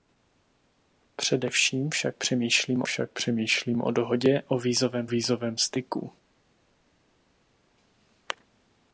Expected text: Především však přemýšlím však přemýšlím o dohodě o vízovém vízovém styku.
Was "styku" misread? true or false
false